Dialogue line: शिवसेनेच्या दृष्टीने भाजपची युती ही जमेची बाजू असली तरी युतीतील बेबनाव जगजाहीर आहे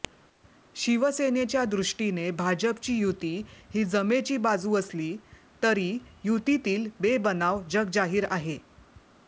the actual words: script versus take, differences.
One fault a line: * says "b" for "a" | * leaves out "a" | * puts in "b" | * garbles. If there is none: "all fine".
all fine